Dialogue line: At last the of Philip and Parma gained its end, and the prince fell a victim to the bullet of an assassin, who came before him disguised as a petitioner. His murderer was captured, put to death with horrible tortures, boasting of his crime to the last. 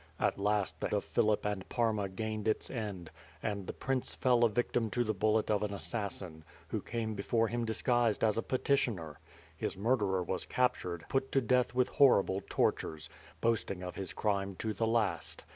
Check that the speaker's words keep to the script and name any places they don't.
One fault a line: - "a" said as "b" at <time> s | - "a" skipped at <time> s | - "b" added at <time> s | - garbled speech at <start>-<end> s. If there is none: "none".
none